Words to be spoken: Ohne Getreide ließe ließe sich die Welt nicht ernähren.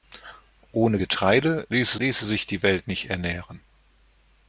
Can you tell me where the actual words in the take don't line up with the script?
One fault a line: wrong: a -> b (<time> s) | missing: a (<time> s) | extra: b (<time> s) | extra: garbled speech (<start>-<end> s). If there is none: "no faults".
no faults